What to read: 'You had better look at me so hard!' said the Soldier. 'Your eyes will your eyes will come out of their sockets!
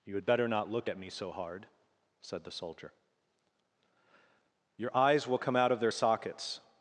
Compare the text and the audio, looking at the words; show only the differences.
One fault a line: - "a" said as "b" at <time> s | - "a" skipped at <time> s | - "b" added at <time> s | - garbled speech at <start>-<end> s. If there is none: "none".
- "not" added at 0.5 s
- "your eyes will" skipped at 5.4 s